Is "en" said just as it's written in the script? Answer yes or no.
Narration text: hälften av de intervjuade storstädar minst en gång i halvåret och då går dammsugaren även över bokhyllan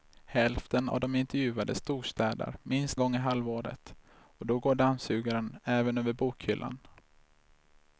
no